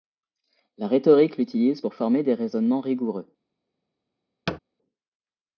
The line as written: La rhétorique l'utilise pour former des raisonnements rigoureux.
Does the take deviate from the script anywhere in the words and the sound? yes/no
yes